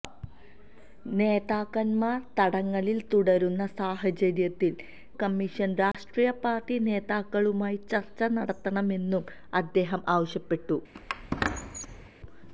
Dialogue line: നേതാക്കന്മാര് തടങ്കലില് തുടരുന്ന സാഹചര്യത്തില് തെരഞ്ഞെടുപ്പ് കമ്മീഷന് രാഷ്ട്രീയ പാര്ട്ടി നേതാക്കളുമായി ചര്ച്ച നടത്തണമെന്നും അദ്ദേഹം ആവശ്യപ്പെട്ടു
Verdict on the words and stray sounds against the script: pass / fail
fail